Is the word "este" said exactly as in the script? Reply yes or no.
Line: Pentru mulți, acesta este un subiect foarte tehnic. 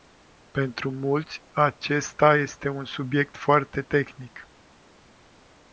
yes